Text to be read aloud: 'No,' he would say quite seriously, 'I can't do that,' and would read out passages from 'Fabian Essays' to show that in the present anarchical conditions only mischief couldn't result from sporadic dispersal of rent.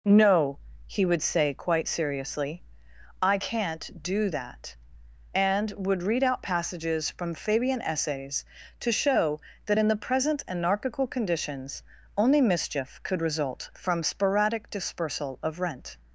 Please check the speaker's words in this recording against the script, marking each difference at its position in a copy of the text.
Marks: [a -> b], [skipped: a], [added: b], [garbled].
'No,' he would say quite seriously, 'I can't do that,' and would read out passages from 'Fabian Essays' to show that in the present anarchical conditions only mischief [couldn't -> could] result from sporadic dispersal of rent.